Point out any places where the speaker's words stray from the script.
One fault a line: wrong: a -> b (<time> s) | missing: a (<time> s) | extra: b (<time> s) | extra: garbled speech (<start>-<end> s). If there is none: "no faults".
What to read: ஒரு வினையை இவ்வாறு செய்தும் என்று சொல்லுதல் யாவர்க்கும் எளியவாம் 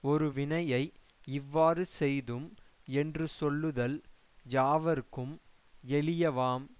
no faults